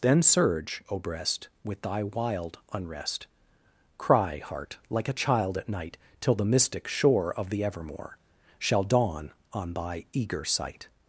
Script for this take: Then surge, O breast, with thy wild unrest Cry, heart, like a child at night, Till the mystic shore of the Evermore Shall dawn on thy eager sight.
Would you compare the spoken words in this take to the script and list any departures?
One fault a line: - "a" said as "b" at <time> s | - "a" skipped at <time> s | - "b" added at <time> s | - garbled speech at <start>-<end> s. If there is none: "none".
none